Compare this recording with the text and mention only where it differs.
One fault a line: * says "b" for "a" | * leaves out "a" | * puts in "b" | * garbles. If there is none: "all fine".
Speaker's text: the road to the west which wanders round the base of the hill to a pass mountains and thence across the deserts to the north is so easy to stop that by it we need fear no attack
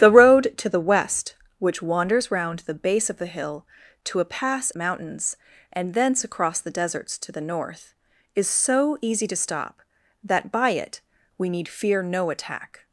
all fine